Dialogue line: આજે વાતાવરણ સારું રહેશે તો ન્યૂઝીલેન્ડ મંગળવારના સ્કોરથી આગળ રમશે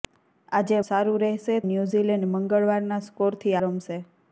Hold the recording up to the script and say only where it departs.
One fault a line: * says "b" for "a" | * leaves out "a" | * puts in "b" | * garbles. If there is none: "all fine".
* leaves out "વાતાવરણ"
* leaves out "તો"
* leaves out "આગળ"